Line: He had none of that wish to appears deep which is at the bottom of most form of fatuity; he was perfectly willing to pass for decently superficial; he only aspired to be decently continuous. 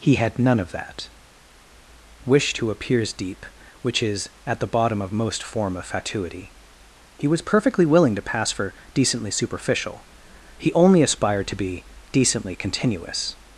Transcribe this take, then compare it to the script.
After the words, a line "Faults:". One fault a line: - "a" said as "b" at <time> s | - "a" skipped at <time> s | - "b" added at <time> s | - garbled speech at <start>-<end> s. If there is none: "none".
He had none of that wish to appears deep which is at the bottom of most form of fatuity; he was perfectly willing to pass for decently superficial; he only aspired to be decently continuous.
Faults:
none